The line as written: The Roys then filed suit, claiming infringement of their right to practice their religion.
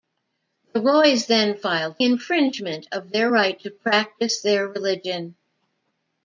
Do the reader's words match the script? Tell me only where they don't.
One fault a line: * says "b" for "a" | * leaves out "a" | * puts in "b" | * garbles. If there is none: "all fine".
* leaves out "suit claiming"